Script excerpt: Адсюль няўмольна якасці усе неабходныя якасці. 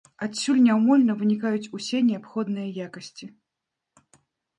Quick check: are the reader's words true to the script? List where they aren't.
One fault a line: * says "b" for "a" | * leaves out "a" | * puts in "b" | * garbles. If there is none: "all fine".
* says "вынікаюць" for "якасці"